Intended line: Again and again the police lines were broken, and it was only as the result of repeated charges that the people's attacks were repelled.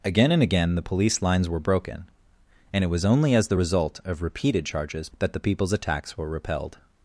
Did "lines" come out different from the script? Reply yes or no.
no